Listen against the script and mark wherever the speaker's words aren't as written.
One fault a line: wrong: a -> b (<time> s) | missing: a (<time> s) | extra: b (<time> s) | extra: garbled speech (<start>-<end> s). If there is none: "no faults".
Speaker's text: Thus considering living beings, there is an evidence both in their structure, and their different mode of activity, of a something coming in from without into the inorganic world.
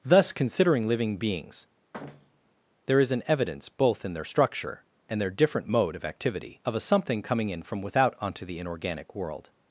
wrong: into -> onto (8.2 s)